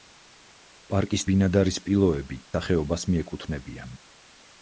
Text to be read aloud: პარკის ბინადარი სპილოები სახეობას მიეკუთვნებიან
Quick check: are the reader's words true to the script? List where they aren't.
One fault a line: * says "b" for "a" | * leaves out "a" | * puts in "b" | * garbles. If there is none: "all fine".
all fine